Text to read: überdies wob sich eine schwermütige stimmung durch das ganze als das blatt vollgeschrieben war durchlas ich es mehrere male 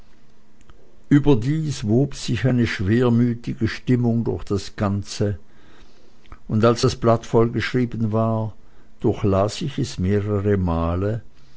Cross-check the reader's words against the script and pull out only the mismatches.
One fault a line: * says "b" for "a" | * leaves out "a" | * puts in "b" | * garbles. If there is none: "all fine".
* puts in "und"